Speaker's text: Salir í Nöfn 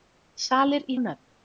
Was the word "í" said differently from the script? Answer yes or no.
no